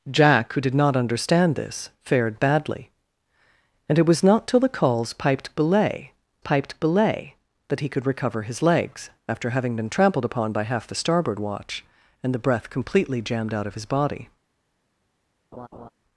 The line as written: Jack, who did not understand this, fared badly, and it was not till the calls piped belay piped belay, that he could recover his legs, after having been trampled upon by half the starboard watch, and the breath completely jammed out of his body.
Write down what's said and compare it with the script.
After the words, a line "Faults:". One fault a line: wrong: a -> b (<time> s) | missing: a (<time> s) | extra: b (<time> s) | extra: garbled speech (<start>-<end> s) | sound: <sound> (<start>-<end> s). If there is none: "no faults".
Jack, who did not understand this, fared badly, and it was not till the calls piped belay piped belay, that he could recover his legs, after having been trampled upon by half the starboard watch, and the breath completely jammed out of his body.
Faults:
sound: laugh (15.5-15.9 s)